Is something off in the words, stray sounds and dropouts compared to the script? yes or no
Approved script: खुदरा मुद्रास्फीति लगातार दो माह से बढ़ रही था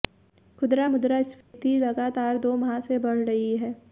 yes